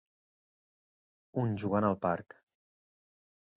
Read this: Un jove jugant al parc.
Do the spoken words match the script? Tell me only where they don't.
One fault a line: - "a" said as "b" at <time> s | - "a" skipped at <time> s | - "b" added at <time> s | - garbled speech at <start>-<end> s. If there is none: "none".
- "jove" skipped at 1.5 s